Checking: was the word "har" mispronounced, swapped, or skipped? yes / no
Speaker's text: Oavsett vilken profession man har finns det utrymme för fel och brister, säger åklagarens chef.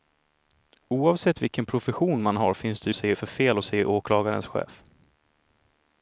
no